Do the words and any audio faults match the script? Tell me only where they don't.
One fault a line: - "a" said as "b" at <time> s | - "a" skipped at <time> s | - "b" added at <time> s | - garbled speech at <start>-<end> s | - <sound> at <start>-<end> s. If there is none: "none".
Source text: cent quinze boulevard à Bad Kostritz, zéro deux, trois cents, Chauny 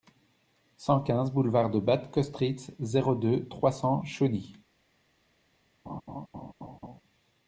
- "à" said as "de" at 1.7 s
- laugh at 5.9-7.0 s